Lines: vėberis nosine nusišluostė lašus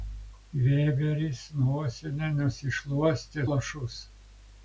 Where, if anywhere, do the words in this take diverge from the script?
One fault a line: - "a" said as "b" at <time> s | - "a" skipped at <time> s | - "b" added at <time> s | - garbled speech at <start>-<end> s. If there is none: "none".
none